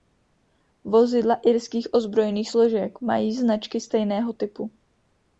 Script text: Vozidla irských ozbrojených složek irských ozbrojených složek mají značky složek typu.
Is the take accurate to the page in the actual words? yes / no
no